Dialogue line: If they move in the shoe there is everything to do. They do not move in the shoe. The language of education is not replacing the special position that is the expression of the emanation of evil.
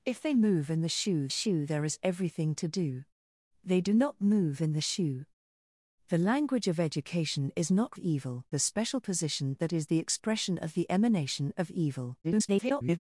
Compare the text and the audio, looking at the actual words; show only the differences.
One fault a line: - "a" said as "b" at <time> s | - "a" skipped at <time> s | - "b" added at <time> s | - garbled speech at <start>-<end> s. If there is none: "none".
- "shoe" added at 1.3 s
- "replacing" said as "evil" at 8.0 s
- garbled speech at 12.2-13.0 s